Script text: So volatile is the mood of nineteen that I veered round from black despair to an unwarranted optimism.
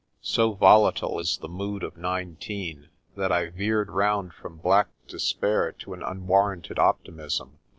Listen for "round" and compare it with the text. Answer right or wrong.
right